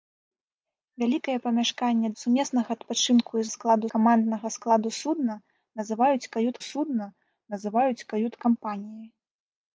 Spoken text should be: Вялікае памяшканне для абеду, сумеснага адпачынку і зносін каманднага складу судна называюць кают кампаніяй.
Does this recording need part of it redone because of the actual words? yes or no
yes